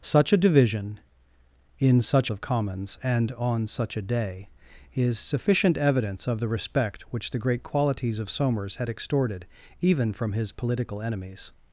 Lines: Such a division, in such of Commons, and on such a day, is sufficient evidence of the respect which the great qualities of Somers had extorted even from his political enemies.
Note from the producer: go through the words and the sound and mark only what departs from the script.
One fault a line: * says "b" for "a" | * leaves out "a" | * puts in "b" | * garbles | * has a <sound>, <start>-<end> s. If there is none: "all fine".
all fine